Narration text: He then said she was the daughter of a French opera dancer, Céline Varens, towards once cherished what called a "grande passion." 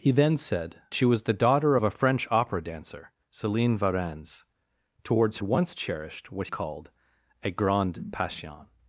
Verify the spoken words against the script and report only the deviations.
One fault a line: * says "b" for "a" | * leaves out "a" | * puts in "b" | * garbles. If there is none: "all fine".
all fine